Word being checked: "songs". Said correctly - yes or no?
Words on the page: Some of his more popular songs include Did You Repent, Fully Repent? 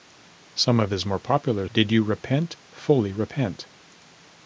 no